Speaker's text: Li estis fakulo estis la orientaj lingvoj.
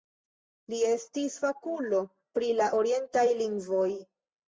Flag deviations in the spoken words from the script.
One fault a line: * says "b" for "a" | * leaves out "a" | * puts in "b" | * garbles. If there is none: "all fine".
* says "pri" for "estis"